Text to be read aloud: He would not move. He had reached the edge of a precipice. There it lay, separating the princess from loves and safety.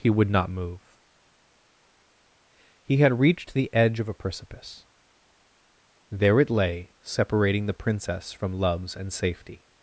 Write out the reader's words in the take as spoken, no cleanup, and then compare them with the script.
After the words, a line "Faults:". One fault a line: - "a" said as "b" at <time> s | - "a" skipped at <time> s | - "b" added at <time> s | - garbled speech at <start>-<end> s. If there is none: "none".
He would not move. He had reached the edge of a precipice. There it lay, separating the princess from loves and safety.
Faults:
none